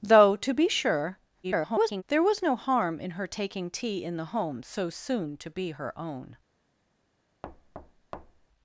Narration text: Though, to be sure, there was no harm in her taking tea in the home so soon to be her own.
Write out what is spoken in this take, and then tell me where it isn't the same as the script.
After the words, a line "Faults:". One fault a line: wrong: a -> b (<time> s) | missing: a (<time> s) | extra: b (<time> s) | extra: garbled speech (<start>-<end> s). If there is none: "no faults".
Though, to be sure, [garbled] there was no harm in her taking tea in the home so soon to be her own.
Faults:
extra: garbled speech (1.4-2.0 s)